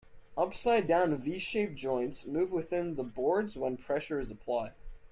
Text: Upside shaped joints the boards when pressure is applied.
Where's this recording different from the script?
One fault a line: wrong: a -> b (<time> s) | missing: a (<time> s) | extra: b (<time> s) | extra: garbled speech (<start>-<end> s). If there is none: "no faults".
extra: down V (0.9 s)
extra: move within (2.3 s)